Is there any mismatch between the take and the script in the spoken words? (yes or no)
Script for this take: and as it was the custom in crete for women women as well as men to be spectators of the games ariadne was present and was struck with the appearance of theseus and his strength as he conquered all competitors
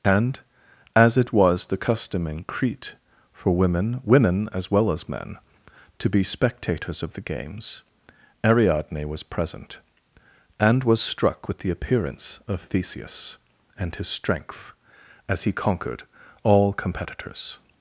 no